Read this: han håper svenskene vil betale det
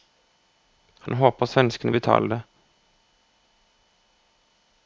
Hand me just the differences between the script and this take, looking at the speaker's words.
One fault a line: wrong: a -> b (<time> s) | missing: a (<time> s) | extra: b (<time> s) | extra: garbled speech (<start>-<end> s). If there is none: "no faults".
missing: vil (1.9 s)